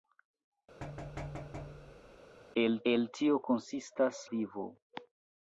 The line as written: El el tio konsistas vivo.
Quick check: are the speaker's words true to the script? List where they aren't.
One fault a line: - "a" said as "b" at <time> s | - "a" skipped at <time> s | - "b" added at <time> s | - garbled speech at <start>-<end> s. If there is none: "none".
none